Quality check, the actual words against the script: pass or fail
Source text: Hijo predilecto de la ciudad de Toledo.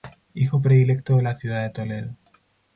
pass